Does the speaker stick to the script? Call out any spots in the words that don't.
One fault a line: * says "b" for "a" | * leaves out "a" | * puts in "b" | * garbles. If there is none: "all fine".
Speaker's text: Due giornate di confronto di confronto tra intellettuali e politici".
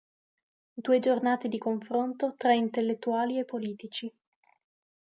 * leaves out "di confronto"